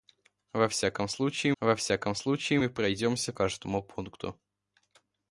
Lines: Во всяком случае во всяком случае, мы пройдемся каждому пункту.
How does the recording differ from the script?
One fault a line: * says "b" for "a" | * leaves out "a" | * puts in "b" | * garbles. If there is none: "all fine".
all fine